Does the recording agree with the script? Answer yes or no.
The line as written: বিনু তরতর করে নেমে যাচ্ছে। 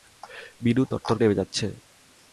no